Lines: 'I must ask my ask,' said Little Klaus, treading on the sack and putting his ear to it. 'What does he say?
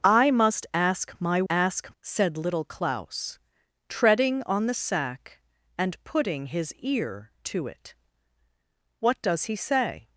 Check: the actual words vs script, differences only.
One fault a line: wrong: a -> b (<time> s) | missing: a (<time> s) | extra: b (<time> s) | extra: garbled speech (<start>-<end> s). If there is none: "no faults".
no faults